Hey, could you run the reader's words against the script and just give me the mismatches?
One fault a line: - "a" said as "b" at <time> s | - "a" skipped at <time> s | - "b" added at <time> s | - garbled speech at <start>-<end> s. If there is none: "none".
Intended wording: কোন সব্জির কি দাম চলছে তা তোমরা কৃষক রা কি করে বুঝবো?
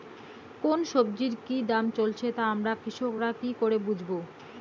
- "তোমরা" said as "আমরা" at 2.5 s